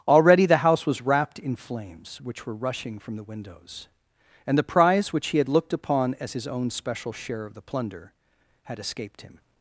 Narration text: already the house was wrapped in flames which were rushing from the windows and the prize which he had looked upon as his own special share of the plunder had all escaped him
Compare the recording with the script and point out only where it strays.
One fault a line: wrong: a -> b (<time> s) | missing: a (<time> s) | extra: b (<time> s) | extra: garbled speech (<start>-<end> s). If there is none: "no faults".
missing: all (8.8 s)